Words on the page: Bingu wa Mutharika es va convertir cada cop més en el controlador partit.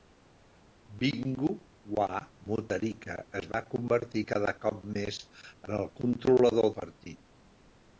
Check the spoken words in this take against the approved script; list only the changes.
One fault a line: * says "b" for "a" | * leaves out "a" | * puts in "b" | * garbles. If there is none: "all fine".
all fine